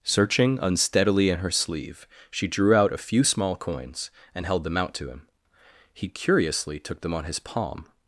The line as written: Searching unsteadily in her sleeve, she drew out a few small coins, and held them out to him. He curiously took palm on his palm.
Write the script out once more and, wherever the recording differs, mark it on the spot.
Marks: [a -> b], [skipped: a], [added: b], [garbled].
Searching unsteadily in her sleeve, she drew out a few small coins, and held them out to him. He curiously took [palm -> them] on his palm.